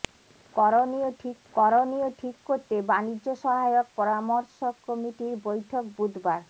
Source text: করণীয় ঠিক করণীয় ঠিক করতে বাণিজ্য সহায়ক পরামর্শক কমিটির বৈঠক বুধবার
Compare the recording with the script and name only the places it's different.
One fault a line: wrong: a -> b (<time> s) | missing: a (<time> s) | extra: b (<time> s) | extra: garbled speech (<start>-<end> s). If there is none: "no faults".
no faults